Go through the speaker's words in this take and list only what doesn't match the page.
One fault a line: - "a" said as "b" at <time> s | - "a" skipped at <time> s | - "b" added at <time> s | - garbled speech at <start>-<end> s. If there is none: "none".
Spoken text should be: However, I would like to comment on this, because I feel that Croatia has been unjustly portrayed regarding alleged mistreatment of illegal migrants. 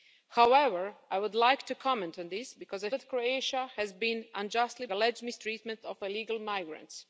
- "feel" skipped at 2.9 s
- "portrayed regarding" skipped at 4.9 s